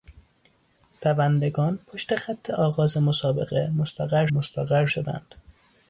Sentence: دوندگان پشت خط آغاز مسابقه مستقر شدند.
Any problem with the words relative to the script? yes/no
yes